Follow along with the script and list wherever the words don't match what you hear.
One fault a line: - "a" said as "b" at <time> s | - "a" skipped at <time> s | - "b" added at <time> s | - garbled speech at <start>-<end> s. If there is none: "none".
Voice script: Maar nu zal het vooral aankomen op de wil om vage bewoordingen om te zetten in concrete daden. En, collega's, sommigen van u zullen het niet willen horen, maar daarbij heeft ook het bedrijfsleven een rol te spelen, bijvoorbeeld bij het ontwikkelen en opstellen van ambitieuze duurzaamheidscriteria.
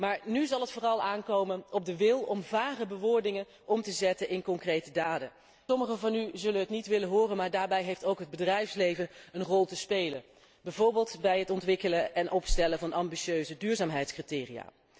- "En collega's" skipped at 5.3 s